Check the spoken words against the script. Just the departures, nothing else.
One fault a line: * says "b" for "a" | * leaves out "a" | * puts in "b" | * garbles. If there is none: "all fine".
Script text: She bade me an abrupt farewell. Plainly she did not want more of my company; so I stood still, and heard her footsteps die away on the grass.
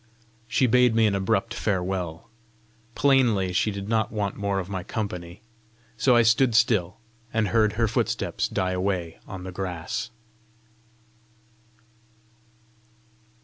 all fine